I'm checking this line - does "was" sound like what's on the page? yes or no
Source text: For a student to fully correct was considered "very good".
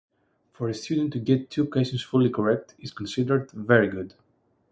no